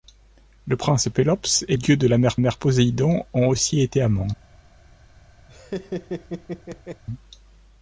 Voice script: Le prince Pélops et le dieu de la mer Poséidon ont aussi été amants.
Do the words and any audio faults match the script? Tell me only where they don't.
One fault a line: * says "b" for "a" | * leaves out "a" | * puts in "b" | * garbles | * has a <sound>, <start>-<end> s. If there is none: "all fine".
* leaves out "le"
* puts in "mer"
* has a laugh, 5.5-7.0 s